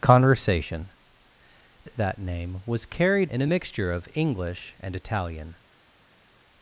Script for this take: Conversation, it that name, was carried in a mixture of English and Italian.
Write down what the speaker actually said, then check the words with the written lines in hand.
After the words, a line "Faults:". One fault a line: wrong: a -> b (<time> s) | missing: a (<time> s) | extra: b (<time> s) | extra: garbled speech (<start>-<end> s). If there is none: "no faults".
Conversation, it that name, was carried in a mixture of English and Italian.
Faults:
no faults